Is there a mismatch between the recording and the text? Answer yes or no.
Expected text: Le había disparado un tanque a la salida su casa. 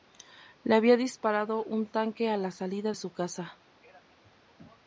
no